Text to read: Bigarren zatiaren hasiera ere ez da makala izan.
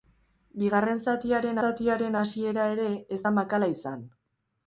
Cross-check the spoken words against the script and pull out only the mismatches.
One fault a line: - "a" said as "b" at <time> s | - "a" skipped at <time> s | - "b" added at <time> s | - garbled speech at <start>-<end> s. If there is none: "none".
- "zatiaren" added at 1.7 s